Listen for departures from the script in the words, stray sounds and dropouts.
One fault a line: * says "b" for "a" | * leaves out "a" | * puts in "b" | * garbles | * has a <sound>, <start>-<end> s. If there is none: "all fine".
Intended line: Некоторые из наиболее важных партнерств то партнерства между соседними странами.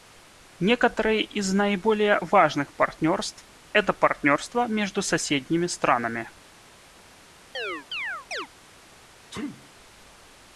* says "это" for "то"
* has a chirp, 7.5-8.5 s
* has a sneeze, 9.3-9.7 s